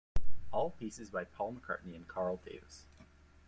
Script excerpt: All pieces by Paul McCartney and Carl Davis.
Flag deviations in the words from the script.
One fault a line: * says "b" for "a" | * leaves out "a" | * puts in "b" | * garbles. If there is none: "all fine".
all fine